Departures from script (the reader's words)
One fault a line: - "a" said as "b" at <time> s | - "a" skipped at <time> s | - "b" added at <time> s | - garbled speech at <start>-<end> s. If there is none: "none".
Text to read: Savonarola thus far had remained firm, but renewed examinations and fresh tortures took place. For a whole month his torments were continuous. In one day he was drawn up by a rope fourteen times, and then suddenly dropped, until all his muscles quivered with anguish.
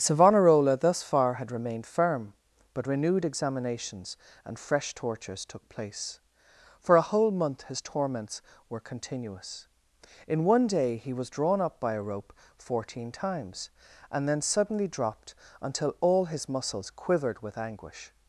none